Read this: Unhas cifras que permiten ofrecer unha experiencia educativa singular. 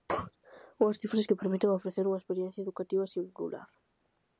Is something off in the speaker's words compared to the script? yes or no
no